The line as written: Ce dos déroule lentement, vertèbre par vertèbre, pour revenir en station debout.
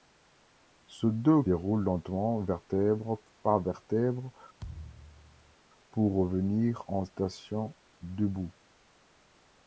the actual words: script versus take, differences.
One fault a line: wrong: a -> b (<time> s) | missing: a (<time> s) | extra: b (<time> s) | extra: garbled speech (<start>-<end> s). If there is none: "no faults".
no faults